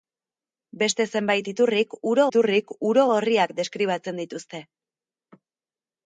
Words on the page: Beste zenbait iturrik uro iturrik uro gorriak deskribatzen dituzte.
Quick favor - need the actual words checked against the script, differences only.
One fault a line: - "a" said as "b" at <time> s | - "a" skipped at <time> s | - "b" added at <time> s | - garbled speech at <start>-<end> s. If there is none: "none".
none